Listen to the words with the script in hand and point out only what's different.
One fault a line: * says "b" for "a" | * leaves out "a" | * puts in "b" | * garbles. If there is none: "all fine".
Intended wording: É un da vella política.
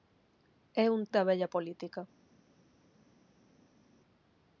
all fine